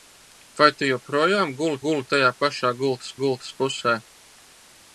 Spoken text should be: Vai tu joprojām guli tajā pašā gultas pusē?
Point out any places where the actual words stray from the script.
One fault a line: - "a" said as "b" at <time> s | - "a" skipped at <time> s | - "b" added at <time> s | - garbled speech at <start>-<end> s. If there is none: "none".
- "guli" added at 1.8 s
- "gultas" added at 3.2 s